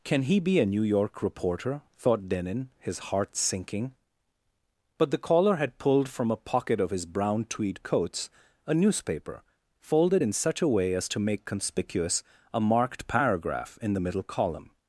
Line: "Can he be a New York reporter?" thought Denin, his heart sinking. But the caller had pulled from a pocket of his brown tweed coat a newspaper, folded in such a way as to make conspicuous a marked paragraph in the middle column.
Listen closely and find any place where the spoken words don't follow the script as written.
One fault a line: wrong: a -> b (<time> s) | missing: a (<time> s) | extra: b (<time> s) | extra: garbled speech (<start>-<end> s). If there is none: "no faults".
wrong: coat -> coats (7.8 s)